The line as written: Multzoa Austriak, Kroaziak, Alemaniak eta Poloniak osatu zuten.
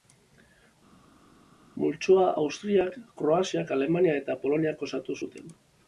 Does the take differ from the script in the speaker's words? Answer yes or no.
no